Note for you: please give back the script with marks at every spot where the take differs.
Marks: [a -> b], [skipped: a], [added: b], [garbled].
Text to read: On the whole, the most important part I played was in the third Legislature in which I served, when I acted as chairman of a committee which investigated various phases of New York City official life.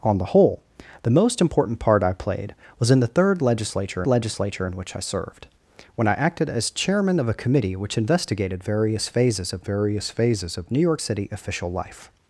On the whole, the most important part I played was in the third Legislature [added: Legislature] in which I served, when I acted as chairman of a committee which investigated various phases of [added: various phases of] New York City official life.